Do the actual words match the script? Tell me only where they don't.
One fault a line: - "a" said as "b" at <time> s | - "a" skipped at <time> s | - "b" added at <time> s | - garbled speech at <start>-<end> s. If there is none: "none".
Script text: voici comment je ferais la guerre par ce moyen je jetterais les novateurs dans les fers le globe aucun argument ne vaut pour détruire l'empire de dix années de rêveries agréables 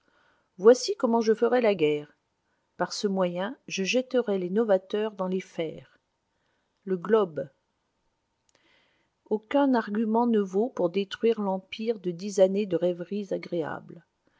none